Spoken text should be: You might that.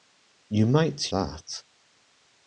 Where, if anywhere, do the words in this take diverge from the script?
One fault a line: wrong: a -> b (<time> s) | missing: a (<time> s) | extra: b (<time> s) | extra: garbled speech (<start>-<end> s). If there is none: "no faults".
no faults